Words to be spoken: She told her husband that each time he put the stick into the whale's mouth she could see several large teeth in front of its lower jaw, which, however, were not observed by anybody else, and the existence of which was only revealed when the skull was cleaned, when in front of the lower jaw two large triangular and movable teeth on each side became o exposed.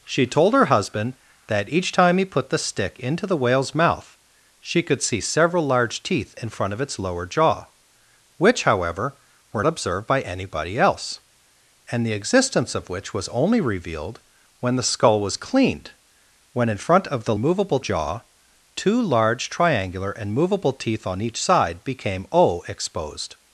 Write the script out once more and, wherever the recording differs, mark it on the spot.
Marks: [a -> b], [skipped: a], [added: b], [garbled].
She told her husband that each time he put the stick into the whale's mouth she could see several large teeth in front of its lower jaw, which, however, were [skipped: not] observed by anybody else, and the existence of which was only revealed when the skull was cleaned, when in front of the [lower -> movable] jaw two large triangular and movable teeth on each side became o exposed.